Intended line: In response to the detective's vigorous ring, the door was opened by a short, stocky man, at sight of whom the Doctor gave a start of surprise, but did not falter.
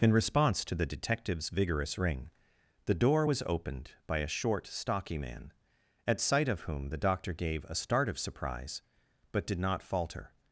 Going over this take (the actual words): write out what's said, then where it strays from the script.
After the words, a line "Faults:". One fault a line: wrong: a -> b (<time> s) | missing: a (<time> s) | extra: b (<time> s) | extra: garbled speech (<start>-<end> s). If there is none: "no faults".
In response to the detective's vigorous ring, the door was opened by a short, stocky man, at sight of whom the Doctor gave a start of surprise, but did not falter.
Faults:
no faults